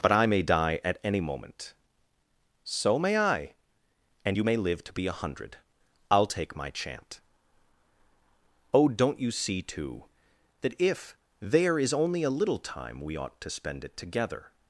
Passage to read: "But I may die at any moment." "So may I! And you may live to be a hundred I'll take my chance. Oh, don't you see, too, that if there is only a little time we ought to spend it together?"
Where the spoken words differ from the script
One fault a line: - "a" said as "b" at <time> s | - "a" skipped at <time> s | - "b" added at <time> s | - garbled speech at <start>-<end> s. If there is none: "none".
- "chance" said as "chant" at 6.7 s